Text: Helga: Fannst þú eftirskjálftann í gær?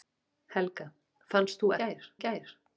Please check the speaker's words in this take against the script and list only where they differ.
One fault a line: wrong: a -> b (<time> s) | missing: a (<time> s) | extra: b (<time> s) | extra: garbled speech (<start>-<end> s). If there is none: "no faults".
wrong: eftirskjálftann -> gær (1.8 s)